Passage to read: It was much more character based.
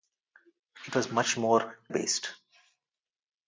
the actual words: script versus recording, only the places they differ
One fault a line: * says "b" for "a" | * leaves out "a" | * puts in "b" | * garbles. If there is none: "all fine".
* leaves out "character"